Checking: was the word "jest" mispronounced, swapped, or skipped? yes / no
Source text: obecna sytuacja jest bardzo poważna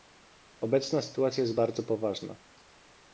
no